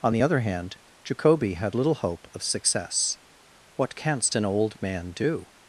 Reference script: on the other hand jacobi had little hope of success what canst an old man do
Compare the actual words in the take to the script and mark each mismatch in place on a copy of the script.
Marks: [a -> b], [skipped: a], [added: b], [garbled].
on the other hand jacobi had little hope of success what canst an old man do